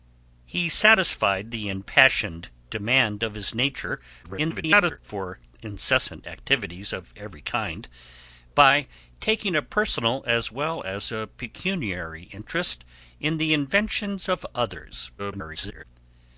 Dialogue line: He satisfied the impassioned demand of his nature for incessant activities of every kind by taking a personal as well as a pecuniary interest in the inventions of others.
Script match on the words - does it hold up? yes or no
no